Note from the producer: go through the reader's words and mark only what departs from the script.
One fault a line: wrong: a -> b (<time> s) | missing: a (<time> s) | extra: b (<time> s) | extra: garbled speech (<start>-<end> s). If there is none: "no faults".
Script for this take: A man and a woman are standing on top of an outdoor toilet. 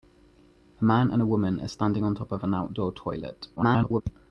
extra: garbled speech (3.6-4.0 s)